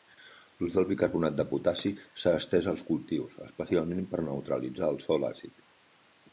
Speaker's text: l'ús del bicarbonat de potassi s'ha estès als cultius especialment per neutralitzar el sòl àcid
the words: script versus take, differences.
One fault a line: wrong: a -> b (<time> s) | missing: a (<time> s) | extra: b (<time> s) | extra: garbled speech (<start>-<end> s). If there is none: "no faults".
no faults